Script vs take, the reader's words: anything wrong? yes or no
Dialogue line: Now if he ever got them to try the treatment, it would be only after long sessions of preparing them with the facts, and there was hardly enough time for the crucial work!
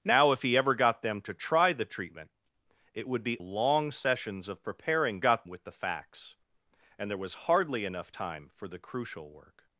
yes